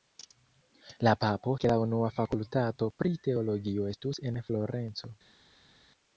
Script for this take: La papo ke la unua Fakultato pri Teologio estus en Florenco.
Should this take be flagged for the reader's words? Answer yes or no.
no